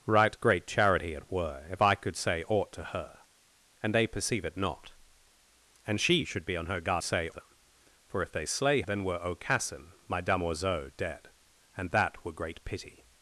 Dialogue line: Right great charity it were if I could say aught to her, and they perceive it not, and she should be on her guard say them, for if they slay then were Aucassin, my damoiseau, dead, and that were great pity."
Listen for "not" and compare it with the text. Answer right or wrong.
right